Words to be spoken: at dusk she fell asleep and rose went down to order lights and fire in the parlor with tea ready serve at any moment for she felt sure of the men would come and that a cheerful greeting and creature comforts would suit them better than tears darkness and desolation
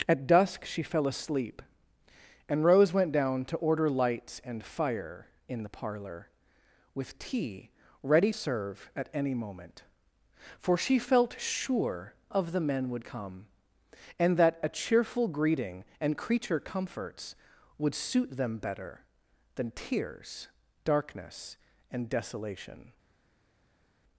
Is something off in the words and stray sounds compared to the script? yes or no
no